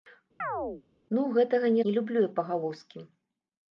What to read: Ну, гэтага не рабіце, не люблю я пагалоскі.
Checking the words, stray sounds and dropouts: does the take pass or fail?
fail